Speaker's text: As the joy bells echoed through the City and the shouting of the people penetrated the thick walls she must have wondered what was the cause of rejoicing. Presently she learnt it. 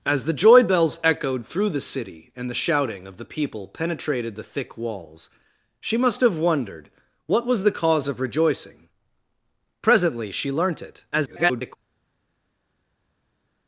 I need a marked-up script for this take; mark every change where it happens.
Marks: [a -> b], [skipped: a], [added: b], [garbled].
As the joy bells echoed through the City and the shouting of the people penetrated the thick walls she must have wondered what was the cause of rejoicing. Presently she learnt it. [garbled]